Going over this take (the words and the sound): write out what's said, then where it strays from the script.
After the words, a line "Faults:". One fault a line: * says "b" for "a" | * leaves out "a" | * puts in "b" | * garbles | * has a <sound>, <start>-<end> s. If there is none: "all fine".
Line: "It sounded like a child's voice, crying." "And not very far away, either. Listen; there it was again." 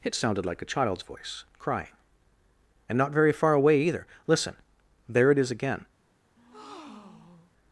"It sounded like a child's voice, crying." "And not very far away, either. Listen; there it is again."
Faults:
* says "is" for "was"
* has a breath, 6.4-7.5 s